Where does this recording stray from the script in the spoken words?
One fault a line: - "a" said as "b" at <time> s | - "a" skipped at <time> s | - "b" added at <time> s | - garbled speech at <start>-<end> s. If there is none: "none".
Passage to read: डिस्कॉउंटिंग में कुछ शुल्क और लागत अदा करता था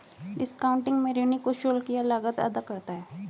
- "ऋणी" added at 1.1 s
- "और" said as "या" at 1.9 s
- "था" said as "है" at 2.9 s